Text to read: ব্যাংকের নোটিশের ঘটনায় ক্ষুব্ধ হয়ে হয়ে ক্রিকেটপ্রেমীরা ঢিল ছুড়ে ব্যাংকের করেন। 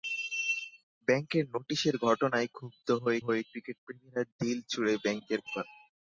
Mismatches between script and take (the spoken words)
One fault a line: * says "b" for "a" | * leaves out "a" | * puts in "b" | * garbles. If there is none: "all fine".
all fine